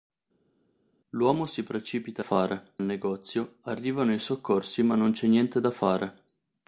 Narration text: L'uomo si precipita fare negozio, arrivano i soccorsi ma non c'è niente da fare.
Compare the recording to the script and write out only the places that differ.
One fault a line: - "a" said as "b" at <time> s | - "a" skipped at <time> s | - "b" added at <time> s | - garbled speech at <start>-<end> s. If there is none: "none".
none